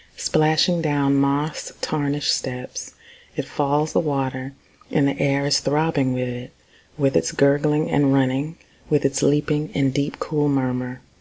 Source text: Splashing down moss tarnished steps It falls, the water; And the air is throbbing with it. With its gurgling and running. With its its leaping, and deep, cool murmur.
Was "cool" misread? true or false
false